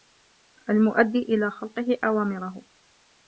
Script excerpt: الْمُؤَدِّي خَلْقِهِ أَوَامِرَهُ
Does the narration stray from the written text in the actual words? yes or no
yes